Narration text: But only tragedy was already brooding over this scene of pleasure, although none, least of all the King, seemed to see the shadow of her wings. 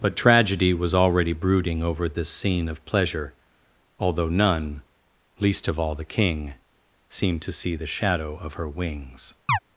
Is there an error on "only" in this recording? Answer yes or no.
yes